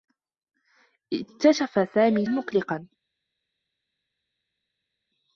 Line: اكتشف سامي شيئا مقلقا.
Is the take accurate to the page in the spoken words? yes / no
no